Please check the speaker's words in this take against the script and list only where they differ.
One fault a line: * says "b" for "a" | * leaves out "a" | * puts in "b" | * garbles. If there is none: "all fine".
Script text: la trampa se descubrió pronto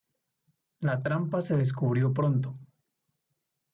all fine